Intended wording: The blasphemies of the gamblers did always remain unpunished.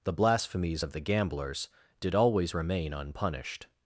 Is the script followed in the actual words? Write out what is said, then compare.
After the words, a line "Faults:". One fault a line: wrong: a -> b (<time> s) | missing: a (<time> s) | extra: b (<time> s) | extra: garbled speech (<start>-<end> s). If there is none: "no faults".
The blasphemies of the gamblers did always remain unpunished.
Faults:
no faults